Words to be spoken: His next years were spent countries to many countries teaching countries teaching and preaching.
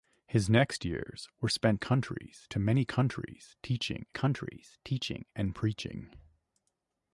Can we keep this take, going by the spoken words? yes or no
yes